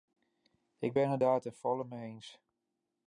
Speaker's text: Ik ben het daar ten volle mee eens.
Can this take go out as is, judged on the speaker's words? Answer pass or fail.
pass